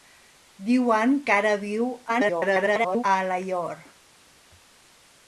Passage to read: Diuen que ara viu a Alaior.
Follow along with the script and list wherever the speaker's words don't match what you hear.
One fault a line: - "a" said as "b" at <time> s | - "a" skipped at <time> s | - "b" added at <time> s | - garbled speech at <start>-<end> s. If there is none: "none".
- garbled speech at 2.1-3.0 s